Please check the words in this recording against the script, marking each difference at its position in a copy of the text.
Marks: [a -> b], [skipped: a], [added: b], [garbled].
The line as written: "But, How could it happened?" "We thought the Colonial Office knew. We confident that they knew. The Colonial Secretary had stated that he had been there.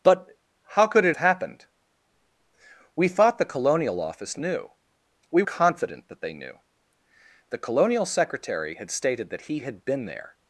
"But, How could it happened?" "We thought the Colonial Office knew. We confident that they knew. The Colonial Secretary had stated that he had been there.